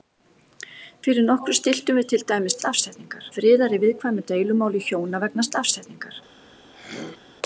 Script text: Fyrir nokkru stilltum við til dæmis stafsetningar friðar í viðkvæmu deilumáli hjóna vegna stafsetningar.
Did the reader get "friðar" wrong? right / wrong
right